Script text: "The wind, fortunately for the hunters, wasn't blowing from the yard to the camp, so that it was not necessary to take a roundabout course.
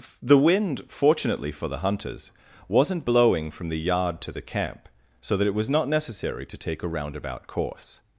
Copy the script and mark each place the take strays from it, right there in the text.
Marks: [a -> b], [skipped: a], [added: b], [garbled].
"The wind, fortunately for the hunters, wasn't blowing from the yard to the camp, so that it was not necessary to take a roundabout course.